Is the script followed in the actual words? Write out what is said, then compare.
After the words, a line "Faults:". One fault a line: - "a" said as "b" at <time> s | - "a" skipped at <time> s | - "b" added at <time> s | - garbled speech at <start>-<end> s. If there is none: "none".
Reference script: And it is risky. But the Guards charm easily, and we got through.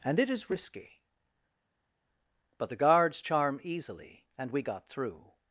And it is risky. But the Guards charm easily, and we got through.
Faults:
none